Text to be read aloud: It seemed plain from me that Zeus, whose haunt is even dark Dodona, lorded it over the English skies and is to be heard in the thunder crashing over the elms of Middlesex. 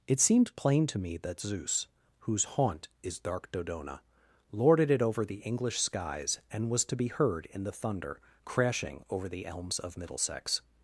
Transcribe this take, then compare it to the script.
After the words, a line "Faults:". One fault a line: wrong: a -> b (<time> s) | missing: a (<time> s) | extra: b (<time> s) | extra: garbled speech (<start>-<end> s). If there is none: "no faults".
It seemed plain to me that Zeus, whose haunt is dark Dodona, lorded it over the English skies and was to be heard in the thunder crashing over the elms of Middlesex.
Faults:
wrong: from -> to (0.9 s)
missing: even (3.2 s)
wrong: is -> was (6.7 s)